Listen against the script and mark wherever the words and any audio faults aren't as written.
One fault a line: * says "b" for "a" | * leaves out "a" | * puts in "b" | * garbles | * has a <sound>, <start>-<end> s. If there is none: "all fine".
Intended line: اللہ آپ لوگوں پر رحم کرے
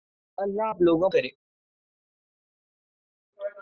* leaves out "پر رحم"